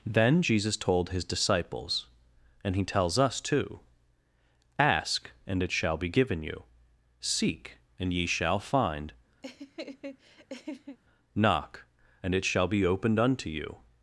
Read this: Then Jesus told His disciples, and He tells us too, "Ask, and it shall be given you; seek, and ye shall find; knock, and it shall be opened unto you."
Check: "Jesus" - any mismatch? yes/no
no